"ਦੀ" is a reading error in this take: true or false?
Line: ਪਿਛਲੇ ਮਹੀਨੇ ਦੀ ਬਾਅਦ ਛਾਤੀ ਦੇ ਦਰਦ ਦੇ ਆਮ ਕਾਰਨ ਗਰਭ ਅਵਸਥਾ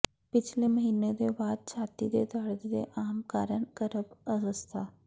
true